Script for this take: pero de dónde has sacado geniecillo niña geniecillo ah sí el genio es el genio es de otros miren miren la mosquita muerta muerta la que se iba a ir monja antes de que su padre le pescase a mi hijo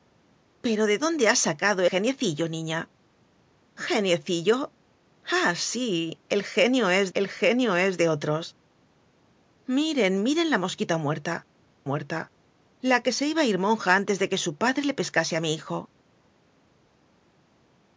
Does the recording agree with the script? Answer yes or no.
yes